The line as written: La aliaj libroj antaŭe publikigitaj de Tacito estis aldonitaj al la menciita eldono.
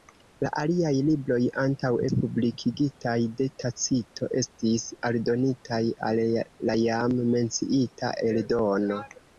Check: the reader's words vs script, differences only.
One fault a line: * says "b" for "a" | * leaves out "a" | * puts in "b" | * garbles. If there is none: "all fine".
* puts in "jam"